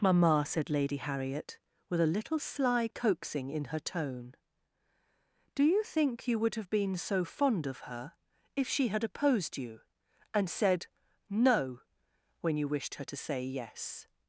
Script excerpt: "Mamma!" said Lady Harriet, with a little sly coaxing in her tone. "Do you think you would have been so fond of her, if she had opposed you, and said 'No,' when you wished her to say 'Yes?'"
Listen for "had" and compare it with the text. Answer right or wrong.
right